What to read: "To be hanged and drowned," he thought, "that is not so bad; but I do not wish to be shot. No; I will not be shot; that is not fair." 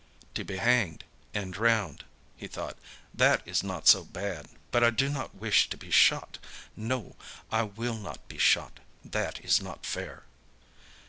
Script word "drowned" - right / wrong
right